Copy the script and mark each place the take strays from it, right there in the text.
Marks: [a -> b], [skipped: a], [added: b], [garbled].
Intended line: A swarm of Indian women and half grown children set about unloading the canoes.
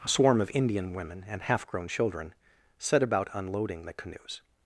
A swarm of Indian women and half grown children set about unloading the canoes.